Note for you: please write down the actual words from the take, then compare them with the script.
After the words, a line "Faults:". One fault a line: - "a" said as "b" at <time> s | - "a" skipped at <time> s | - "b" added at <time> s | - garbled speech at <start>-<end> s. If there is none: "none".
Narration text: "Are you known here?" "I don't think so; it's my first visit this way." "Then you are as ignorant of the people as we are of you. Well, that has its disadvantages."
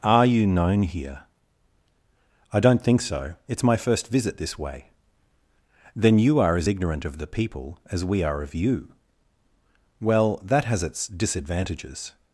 "Are you known here?" "I don't think so; it's my first visit this way." "Then you are as ignorant of the people as we are of you. Well, that has its disadvantages."
Faults:
none